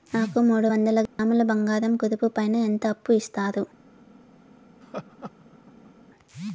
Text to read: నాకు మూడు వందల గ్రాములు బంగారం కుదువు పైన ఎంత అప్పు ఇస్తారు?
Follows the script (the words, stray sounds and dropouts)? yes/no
no